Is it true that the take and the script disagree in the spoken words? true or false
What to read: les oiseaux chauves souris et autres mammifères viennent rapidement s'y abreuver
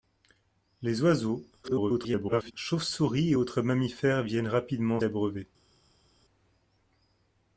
true